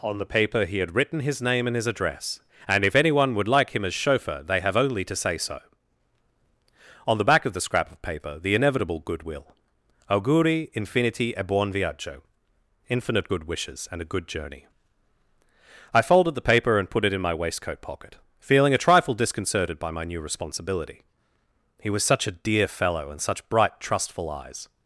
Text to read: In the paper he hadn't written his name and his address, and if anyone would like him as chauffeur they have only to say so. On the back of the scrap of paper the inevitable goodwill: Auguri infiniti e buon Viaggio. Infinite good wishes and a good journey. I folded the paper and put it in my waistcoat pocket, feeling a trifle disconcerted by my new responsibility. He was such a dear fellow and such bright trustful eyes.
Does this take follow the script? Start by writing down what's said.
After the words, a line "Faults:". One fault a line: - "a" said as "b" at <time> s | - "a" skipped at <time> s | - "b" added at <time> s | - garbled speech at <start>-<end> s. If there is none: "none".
On the paper he had written his name and his address, and if anyone would like him as chauffeur they have only to say so. On the back of the scrap of paper the inevitable goodwill: Auguri infiniti e buon Viaggio. Infinite good wishes and a good journey. I folded the paper and put it in my waistcoat pocket, feeling a trifle disconcerted by my new responsibility. He was such a dear fellow and such bright trustful eyes.
Faults:
- "In" said as "On" at 0.0 s
- "hadn't" said as "had" at 0.8 s